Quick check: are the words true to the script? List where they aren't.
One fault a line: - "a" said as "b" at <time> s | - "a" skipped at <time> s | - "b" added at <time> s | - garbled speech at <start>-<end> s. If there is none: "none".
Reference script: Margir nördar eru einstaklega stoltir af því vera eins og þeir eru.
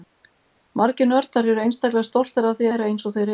none